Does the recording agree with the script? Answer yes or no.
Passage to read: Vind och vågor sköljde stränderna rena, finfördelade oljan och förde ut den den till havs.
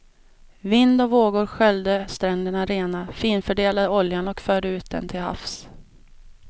no